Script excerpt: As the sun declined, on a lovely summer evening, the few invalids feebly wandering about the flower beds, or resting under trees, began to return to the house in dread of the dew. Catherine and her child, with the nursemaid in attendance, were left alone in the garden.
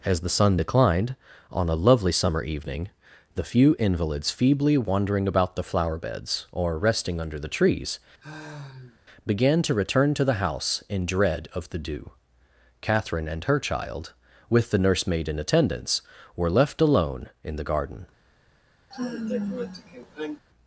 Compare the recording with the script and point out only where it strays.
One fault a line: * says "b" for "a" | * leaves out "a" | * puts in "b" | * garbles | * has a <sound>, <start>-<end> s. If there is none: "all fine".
* puts in "the"
* has a sigh, 8.2-9.0 s
* has a sigh, 18.9-20.4 s